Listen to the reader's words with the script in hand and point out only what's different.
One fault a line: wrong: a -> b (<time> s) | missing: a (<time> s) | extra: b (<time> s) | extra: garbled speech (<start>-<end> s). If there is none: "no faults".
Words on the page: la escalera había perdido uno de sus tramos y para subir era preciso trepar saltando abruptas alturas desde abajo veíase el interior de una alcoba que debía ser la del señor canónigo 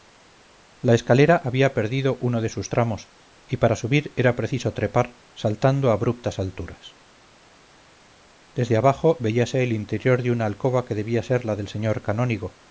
no faults